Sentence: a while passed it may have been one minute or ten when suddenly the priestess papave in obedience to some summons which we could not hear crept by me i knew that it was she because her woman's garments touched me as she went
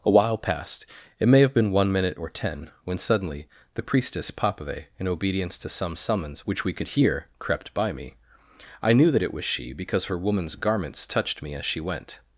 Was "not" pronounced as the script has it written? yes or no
no